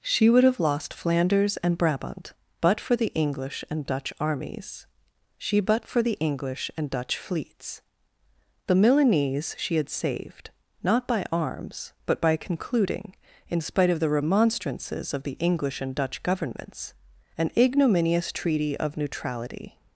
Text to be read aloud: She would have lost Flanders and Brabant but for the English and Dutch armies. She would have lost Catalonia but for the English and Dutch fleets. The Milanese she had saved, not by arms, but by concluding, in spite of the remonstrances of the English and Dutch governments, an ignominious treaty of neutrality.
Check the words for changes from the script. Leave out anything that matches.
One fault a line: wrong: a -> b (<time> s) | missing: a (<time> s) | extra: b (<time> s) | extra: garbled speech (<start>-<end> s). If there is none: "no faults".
missing: would have lost Catalonia (5.6 s)